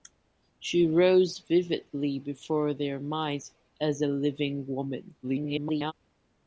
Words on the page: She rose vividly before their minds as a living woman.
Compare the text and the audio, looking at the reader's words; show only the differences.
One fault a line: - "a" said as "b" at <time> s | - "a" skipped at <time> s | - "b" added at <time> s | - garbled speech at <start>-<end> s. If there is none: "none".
- garbled speech at 5.2-5.9 s